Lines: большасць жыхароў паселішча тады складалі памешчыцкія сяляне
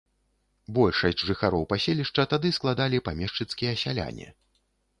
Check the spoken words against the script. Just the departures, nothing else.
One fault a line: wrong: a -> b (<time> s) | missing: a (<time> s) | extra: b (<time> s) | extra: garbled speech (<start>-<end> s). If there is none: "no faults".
no faults